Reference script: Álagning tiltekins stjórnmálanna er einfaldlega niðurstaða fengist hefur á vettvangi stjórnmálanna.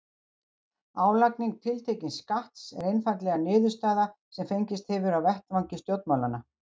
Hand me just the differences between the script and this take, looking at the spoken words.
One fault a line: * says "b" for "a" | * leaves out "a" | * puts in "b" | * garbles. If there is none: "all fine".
* says "skatts" for "stjórnmálanna"
* puts in "sem"